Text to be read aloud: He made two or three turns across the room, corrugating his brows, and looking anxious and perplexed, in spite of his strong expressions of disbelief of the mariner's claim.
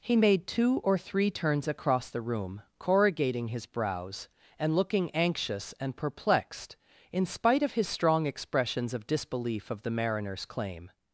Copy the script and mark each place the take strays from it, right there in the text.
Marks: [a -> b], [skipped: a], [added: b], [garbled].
He made two or three turns across the room, corrugating his brows, and looking anxious and perplexed, in spite of his strong expressions of disbelief of the mariner's claim.